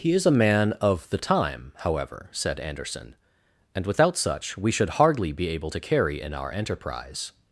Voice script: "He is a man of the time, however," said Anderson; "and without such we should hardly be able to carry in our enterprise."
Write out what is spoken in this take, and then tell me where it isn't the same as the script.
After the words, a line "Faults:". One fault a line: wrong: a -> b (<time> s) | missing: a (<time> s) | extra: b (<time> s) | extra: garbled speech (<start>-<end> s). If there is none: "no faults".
"He is a man of the time, however," said Anderson; "and without such we should hardly be able to carry in our enterprise."
Faults:
no faults